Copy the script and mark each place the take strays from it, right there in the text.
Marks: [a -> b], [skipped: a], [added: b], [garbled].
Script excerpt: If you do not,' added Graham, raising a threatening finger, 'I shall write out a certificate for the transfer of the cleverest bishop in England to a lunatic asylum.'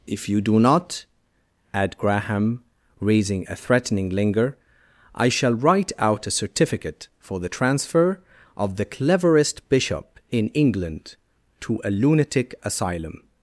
If you do not,' [added -> add] Graham, raising a threatening [finger, -> linger] 'I shall write out a certificate for the transfer of the cleverest bishop in England to a lunatic asylum.'